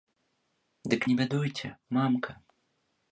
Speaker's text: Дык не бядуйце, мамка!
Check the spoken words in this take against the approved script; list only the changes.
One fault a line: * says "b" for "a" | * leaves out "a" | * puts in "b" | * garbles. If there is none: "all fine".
all fine